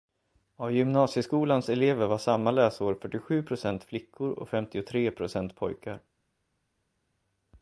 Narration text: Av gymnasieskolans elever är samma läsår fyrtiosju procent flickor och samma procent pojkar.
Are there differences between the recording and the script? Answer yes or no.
yes